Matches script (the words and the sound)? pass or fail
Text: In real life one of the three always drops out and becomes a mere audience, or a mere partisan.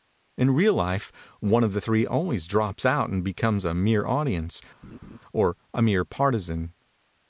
fail